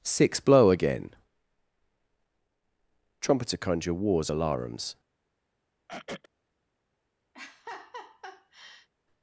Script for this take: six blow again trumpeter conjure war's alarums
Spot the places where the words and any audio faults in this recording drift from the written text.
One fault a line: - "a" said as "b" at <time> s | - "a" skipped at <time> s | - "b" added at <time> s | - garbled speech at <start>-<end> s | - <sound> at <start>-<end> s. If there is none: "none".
- throat clearing at 5.9-6.3 s
- laugh at 7.3-8.9 s